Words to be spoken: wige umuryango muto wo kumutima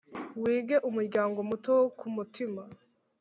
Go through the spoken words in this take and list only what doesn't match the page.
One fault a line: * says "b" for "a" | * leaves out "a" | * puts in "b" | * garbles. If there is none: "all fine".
all fine